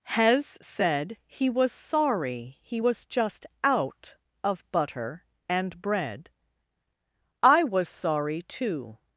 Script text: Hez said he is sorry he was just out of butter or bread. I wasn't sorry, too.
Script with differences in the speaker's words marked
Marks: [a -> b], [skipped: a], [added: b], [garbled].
Hez said he [is -> was] sorry he was just out of butter [or -> and] bread. I [wasn't -> was] sorry, too.